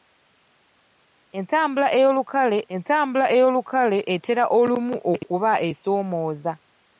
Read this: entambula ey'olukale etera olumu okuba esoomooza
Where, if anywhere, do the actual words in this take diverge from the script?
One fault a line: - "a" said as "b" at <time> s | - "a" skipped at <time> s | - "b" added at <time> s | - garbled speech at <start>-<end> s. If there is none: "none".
- "entambula ey'olukale" added at 2.7 s